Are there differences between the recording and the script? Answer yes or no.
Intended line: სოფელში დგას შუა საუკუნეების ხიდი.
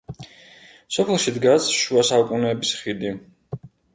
no